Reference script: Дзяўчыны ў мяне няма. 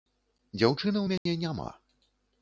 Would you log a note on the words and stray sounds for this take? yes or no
yes